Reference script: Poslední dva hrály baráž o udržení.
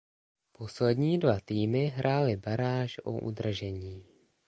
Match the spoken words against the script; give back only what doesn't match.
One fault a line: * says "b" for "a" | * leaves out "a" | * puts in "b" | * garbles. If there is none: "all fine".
* puts in "týmy"